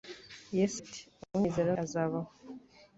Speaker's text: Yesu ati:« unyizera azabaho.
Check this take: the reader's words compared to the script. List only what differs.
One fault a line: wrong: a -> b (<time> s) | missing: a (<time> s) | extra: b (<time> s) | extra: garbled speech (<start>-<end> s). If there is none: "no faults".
no faults